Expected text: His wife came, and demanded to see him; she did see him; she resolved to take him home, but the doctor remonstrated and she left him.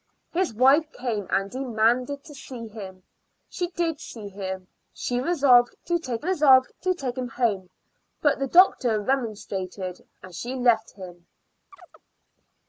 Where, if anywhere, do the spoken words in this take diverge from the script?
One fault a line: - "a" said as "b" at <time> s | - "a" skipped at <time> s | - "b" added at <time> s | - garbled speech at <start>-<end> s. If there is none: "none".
- "resolved to take" added at 6.2 s